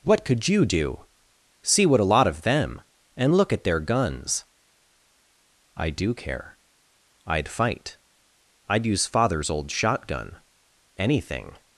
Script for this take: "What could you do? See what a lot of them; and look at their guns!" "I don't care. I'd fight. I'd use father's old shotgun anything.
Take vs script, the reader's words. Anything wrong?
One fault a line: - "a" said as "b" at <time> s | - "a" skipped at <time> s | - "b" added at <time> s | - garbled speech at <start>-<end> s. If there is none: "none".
- "don't" said as "do" at 5.9 s